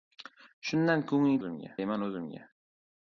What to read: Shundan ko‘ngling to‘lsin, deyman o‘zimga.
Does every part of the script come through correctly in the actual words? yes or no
no